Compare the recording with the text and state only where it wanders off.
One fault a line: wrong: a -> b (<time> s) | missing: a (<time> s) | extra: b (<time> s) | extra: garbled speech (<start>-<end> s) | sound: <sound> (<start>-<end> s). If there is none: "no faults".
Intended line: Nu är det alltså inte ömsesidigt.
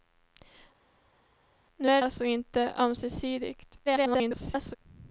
missing: det (2.0 s)
extra: garbled speech (3.9-4.8 s)